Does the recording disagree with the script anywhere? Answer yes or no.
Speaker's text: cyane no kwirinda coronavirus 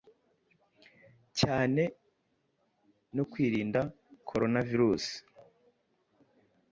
no